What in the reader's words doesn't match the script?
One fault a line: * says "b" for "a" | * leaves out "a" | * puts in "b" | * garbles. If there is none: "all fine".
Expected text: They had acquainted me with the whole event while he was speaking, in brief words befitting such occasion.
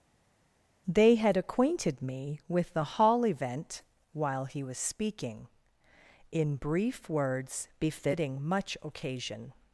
* says "hall" for "whole"
* says "much" for "such"